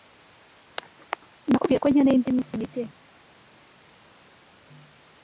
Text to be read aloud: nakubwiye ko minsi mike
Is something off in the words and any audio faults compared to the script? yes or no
yes